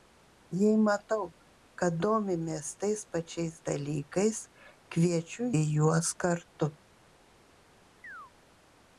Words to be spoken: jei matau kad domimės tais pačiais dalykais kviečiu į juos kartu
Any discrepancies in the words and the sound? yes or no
yes